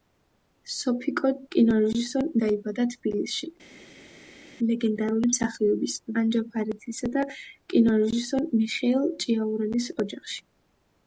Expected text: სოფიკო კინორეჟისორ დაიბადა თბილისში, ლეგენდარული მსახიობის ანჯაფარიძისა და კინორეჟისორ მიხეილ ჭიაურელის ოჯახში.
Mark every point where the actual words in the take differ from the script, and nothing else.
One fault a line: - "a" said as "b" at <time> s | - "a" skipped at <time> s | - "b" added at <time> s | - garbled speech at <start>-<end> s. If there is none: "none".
none